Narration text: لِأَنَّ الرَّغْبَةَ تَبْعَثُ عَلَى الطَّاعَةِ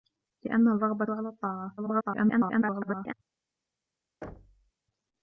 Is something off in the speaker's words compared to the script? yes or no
yes